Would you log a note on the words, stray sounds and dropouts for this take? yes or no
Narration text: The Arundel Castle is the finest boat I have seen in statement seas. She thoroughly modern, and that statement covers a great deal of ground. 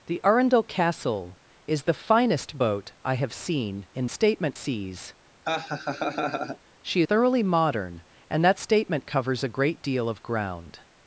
yes